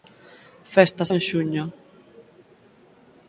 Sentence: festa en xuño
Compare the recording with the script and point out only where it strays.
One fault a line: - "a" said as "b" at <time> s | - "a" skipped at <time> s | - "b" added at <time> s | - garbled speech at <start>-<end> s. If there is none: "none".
none